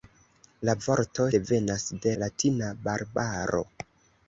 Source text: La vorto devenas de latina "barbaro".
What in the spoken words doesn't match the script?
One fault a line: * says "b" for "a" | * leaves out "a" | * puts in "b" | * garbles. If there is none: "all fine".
all fine